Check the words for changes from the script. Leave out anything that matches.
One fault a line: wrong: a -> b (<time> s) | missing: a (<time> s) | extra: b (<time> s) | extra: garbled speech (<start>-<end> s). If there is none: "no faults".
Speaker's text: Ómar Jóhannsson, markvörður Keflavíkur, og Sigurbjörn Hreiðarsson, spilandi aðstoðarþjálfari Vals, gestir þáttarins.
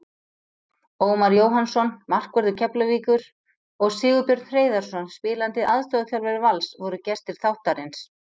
extra: voru (6.9 s)